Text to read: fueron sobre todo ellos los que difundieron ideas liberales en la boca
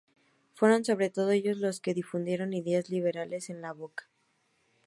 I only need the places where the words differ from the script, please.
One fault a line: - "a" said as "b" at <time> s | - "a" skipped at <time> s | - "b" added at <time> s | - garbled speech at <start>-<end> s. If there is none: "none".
none